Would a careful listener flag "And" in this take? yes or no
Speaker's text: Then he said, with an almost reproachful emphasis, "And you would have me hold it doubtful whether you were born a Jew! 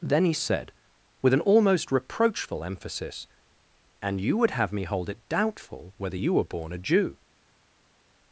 no